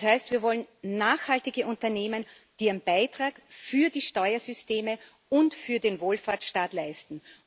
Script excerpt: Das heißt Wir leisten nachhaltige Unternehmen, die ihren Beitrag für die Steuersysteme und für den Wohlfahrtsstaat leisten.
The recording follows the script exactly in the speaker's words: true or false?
false